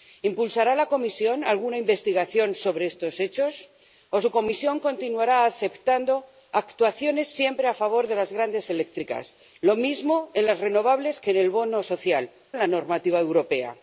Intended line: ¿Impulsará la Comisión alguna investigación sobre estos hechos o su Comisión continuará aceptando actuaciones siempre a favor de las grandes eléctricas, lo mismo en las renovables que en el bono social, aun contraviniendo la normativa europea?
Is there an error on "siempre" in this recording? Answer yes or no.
no